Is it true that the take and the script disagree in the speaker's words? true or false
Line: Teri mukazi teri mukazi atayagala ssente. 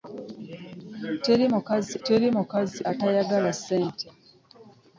false